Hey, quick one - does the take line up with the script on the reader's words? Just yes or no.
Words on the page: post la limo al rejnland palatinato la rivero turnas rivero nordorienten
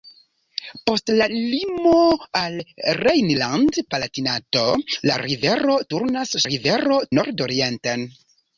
yes